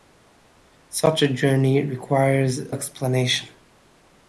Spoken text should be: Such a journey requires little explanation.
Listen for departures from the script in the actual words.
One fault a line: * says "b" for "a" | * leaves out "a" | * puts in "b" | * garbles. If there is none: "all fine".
* leaves out "little"